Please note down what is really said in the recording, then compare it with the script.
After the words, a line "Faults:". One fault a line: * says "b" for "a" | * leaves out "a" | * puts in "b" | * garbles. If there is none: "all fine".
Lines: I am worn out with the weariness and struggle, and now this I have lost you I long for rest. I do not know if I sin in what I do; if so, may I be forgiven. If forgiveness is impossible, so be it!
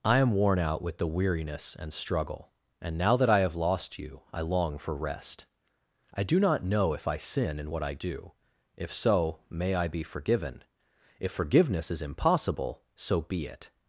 I am worn out with the weariness and struggle, and now that I have lost you I long for rest. I do not know if I sin in what I do; if so, may I be forgiven. If forgiveness is impossible, so be it!
Faults:
* says "that" for "this"